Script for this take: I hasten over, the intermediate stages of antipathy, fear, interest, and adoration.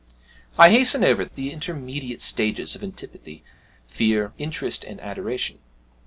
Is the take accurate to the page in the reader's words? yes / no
yes